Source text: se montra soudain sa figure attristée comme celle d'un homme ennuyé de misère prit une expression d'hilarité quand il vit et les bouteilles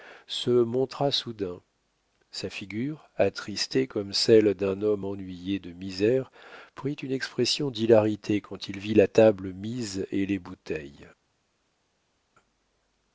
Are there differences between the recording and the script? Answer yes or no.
yes